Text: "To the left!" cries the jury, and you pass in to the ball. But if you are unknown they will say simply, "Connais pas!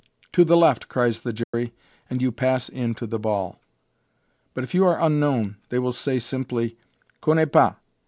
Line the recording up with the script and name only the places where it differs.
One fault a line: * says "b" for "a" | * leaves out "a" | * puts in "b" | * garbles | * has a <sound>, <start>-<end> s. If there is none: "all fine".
* has a dropout, 1.4-1.5 s